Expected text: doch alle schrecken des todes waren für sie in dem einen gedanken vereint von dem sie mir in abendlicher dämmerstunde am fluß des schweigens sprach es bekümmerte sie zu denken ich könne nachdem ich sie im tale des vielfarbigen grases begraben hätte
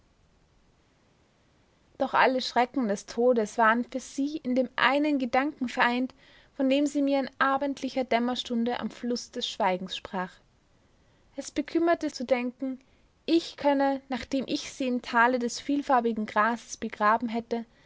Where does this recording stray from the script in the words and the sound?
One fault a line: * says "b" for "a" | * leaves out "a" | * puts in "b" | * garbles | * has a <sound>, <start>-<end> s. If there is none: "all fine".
* leaves out "sie"